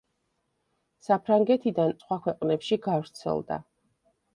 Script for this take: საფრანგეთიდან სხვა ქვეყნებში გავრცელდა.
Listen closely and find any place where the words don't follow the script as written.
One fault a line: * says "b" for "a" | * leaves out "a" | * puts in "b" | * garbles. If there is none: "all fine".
all fine